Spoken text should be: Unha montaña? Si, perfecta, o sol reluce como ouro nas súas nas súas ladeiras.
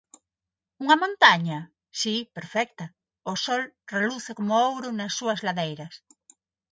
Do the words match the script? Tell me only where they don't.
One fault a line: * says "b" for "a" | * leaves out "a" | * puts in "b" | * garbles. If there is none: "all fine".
* leaves out "nas súas"